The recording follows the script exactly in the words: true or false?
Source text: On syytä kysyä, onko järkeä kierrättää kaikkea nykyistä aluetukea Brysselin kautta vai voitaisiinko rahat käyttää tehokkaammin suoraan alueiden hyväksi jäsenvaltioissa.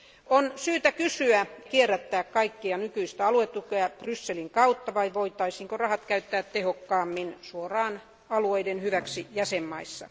false